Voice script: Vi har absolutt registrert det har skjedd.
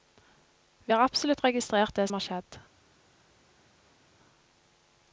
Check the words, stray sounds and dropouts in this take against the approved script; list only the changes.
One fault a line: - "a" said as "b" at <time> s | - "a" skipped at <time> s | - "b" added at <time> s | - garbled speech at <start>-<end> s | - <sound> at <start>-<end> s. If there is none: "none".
none